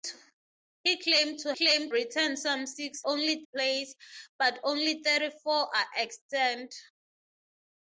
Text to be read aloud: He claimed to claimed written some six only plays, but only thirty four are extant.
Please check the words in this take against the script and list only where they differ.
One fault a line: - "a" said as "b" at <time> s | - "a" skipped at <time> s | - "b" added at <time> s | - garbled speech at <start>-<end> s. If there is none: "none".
none